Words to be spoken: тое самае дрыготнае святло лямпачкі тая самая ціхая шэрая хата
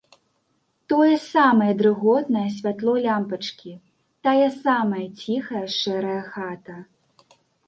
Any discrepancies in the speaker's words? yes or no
no